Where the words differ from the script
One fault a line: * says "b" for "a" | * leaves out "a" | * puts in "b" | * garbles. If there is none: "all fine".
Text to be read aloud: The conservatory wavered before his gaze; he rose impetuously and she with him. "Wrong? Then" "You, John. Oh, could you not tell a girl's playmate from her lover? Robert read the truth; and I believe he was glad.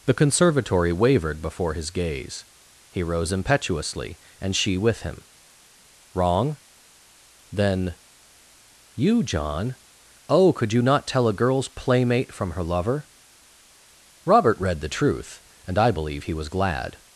all fine